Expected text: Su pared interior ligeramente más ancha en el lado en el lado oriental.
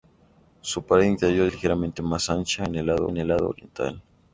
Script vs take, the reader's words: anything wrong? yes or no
no